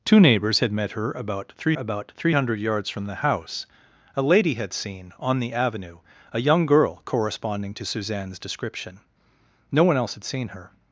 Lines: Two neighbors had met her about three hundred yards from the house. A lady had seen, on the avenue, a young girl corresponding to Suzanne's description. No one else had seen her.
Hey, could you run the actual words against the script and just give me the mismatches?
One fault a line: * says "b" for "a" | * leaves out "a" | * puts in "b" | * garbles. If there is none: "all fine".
* puts in "about three"